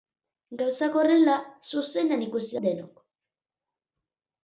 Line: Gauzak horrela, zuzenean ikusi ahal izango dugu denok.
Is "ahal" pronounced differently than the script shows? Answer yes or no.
yes